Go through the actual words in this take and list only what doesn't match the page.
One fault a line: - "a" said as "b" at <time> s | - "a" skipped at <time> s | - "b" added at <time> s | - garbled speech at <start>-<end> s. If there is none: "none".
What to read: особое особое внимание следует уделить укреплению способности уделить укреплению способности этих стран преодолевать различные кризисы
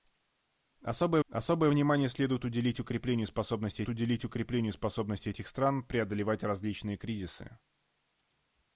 none